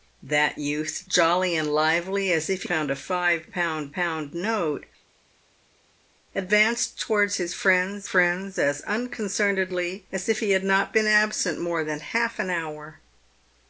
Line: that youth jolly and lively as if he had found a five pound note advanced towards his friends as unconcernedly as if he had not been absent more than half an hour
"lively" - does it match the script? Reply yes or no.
yes